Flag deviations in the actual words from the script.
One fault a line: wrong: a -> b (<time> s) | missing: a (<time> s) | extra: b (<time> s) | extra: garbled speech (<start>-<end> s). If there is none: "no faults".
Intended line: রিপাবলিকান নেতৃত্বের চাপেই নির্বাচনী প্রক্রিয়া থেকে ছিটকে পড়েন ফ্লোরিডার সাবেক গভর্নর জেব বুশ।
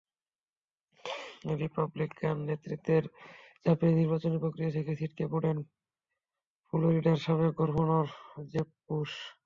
no faults